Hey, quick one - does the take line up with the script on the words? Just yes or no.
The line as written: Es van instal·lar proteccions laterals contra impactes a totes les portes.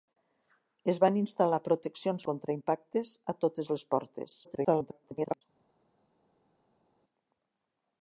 no